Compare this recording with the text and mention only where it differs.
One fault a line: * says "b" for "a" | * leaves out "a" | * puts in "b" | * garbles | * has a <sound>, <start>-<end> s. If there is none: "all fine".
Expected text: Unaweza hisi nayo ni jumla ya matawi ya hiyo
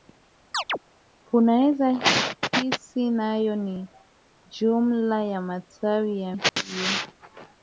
* has a chirp, 0.5-0.8 s
* has a dropout, 6.5-6.6 s